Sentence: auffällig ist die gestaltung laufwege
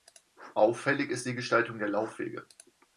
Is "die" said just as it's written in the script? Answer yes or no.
yes